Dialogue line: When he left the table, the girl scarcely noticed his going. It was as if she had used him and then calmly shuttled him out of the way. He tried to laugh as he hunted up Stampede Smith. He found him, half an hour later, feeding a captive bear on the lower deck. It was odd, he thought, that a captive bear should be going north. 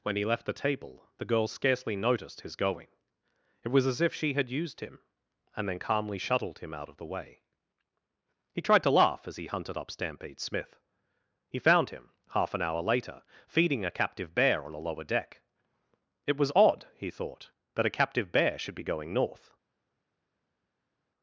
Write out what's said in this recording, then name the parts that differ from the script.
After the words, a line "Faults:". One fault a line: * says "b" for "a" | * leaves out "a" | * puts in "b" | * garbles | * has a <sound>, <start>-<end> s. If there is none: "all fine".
When he left the table, the girl scarcely noticed his going. It was as if she had used him and then calmly shuttled him out of the way. He tried to laugh as he hunted up Stampede Smith. He found him, half an hour later, feeding a captive bear on a lower deck. It was odd, he thought, that a captive bear should be going north.
Faults:
* says "a" for "the"